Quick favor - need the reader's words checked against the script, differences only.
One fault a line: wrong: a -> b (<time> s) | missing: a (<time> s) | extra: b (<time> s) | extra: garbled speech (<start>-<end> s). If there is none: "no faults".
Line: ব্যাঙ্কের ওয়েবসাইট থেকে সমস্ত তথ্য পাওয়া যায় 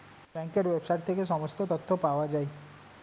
no faults